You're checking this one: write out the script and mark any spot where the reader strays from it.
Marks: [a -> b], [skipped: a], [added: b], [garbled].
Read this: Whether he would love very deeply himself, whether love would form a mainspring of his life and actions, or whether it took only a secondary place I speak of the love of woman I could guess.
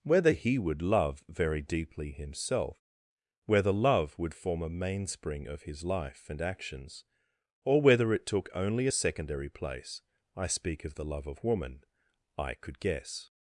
Whether he would love very deeply himself, whether love would form a mainspring of his life and actions, or whether it took only a secondary place I speak of the love of woman I could guess.